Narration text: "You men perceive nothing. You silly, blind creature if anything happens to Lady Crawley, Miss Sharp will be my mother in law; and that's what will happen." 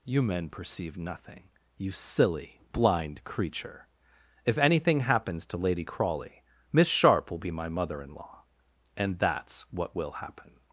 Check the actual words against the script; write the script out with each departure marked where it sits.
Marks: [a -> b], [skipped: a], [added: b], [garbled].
"You men perceive nothing. You silly, blind creature if anything happens to Lady Crawley, Miss Sharp will be my mother in law; and that's what will happen."